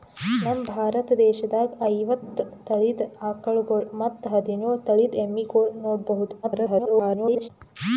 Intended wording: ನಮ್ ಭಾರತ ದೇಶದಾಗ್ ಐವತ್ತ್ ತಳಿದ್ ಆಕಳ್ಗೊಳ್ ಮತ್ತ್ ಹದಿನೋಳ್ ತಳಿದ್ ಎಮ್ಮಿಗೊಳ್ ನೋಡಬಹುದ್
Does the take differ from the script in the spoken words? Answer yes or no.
yes